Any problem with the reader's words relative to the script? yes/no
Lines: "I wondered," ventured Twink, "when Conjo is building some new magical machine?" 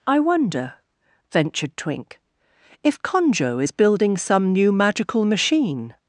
yes